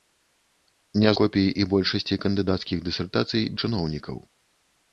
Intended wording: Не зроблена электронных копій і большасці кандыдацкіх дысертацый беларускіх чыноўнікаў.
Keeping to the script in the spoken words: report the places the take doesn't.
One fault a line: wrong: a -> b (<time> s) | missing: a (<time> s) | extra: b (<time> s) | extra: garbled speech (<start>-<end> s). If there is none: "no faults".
missing: зроблена электронных (1.1 s)
missing: беларускіх (3.4 s)